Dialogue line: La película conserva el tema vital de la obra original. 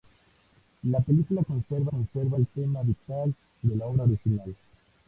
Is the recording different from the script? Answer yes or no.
yes